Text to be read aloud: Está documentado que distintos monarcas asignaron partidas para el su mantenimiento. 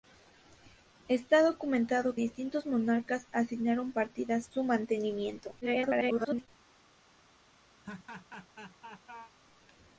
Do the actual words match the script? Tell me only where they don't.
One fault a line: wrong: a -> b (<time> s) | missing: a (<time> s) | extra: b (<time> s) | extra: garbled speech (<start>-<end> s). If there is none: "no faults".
missing: que (2.2 s)
missing: para el (4.5 s)
extra: garbled speech (5.6-6.5 s)